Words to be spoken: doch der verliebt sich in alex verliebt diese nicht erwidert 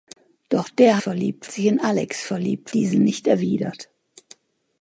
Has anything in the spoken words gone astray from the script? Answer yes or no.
no